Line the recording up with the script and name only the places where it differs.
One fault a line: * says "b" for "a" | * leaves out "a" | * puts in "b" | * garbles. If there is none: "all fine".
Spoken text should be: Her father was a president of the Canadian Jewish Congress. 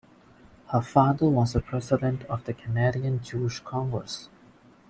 all fine